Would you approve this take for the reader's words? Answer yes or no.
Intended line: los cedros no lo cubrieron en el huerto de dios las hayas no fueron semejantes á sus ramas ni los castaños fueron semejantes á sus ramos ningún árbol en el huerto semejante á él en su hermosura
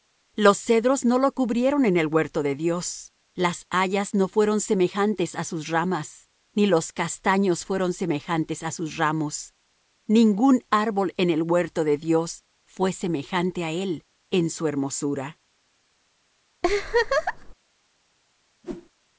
no